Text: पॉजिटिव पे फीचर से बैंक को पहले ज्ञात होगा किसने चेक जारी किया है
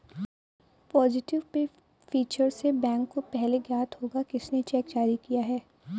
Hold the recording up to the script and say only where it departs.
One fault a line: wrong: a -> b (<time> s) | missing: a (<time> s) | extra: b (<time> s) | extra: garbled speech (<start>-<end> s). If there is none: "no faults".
no faults